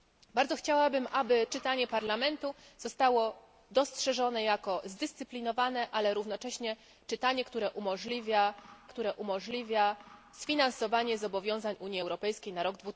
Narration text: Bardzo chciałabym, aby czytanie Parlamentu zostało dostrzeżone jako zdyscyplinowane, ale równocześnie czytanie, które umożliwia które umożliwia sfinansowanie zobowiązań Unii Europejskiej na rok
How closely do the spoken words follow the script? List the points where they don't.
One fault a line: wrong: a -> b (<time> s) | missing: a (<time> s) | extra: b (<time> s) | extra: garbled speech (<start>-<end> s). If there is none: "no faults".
no faults